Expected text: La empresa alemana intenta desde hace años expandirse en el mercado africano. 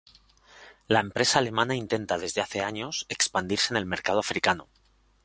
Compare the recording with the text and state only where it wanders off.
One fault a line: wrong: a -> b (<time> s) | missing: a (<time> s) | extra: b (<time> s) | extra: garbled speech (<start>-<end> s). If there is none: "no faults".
no faults